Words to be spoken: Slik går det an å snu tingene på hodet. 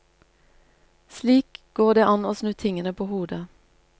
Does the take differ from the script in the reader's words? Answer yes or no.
no